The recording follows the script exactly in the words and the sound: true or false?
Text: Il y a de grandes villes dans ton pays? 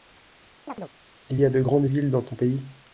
false